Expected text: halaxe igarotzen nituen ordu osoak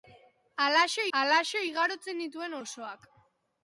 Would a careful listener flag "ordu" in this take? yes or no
yes